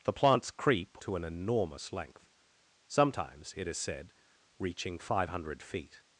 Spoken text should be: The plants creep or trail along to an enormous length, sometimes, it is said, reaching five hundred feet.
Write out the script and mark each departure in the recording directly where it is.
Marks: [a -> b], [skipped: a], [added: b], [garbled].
The plants creep [skipped: or trail along] to an enormous length, sometimes, it is said, reaching five hundred feet.